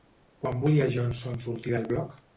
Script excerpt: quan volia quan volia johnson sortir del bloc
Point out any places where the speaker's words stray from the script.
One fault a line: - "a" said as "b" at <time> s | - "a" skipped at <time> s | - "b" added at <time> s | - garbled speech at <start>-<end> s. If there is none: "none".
- "quan volia" skipped at 0.8 s